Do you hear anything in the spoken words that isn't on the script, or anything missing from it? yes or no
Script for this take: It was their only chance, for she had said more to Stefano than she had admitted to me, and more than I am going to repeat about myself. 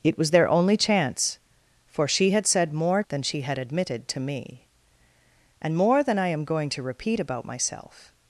yes